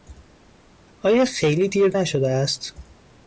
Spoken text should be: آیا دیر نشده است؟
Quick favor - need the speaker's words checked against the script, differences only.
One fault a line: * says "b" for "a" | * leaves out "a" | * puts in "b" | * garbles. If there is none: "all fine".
* puts in "خیلی"